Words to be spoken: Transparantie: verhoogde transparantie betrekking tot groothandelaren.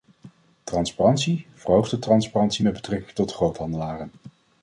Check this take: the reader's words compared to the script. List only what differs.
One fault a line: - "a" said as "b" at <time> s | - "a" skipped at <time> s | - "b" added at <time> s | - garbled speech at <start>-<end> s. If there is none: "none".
- "met" added at 2.6 s